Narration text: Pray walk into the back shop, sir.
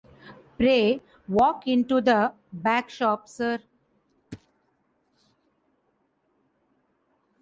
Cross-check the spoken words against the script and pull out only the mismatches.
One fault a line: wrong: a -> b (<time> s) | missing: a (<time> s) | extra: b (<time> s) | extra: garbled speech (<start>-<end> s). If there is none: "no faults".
no faults